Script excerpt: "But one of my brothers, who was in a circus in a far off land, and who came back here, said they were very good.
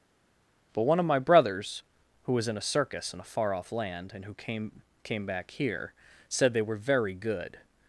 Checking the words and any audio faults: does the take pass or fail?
fail